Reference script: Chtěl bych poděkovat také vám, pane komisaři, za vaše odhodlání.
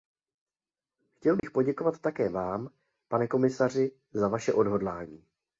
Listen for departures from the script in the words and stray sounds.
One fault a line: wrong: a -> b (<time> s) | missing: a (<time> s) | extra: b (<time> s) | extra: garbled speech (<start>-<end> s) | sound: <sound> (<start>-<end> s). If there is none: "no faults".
sound: dropout (1.4-1.4 s)